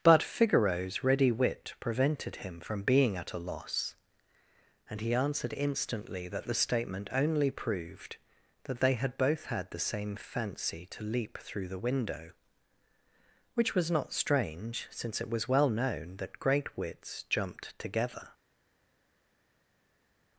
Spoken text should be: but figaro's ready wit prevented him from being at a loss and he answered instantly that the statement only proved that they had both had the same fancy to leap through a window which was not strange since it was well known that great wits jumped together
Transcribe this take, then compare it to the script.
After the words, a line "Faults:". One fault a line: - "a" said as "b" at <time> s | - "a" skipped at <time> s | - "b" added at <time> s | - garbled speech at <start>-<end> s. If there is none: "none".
but figaro's ready wit prevented him from being at a loss and he answered instantly that the statement only proved that they had both had the same fancy to leap through the window which was not strange since it was well known that great wits jumped together
Faults:
- "a" said as "the" at 11.7 s